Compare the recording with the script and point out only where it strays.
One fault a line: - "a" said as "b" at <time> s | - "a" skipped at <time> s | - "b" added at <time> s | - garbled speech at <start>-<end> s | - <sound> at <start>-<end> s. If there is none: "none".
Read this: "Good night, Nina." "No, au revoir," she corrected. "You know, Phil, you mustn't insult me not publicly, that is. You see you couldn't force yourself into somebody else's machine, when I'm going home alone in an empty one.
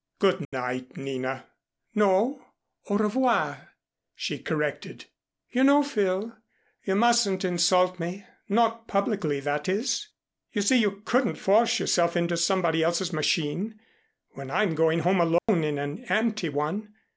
- dropout at 0.4-0.5 s
- dropout at 15.4-15.5 s